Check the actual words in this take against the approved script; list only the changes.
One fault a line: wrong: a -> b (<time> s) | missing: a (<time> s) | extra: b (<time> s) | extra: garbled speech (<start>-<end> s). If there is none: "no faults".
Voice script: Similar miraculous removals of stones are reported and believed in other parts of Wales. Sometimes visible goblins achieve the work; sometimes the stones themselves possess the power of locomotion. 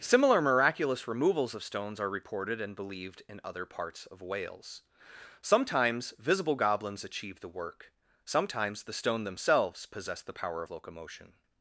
wrong: stones -> stone (8.9 s)